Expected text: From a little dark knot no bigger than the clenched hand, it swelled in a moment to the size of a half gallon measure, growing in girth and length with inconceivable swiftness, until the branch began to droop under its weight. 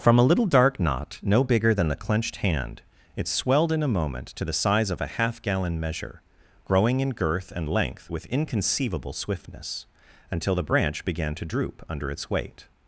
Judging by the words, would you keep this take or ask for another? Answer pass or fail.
pass